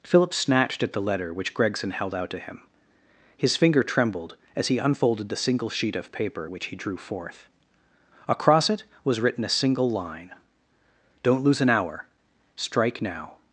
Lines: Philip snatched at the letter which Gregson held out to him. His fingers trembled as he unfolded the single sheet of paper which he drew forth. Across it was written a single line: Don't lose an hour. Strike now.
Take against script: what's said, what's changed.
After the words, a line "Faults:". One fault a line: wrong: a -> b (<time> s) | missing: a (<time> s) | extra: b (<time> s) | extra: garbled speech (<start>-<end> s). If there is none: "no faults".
Philip snatched at the letter which Gregson held out to him. His finger trembled as he unfolded the single sheet of paper which he drew forth. Across it was written a single line: Don't lose an hour. Strike now.
Faults:
wrong: fingers -> finger (3.6 s)